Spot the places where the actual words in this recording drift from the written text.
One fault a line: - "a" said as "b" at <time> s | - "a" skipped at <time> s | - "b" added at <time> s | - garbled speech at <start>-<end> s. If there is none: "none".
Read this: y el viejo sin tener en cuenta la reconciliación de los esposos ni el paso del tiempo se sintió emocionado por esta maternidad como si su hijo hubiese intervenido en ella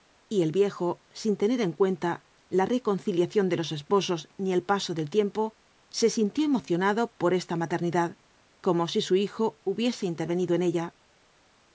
none